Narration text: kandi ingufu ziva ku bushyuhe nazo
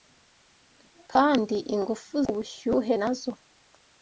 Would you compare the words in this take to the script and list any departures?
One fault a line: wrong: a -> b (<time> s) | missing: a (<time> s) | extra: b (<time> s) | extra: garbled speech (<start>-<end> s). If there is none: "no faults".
missing: ziva (2.1 s)